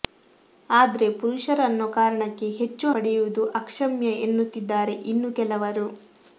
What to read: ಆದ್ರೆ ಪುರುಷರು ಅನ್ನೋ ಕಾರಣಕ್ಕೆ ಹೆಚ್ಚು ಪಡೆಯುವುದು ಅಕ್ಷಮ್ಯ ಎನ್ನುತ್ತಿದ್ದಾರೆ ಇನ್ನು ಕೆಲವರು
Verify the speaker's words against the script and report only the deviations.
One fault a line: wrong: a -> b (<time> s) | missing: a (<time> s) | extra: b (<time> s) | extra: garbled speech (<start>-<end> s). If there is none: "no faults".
no faults